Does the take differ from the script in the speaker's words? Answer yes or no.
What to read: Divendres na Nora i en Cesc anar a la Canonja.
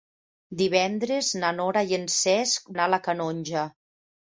no